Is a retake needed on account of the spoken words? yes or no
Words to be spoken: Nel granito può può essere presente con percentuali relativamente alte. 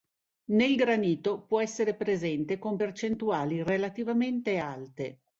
yes